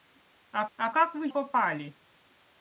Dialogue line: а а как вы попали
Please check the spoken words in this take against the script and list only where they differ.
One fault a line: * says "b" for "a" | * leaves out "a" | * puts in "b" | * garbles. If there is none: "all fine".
all fine